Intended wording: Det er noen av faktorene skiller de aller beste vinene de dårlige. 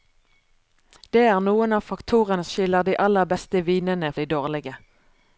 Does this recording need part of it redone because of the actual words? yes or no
no